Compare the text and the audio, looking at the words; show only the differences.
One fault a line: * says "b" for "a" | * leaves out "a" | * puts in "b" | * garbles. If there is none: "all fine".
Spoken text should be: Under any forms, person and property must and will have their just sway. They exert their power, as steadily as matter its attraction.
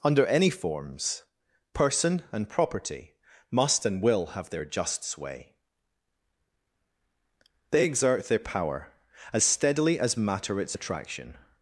all fine